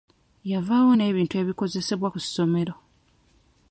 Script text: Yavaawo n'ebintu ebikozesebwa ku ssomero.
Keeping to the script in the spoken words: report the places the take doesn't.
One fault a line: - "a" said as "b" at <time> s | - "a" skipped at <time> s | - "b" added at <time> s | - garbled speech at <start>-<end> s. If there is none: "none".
none